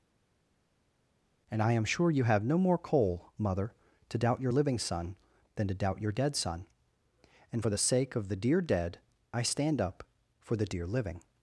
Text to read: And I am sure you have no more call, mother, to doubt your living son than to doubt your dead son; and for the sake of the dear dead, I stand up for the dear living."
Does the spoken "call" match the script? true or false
false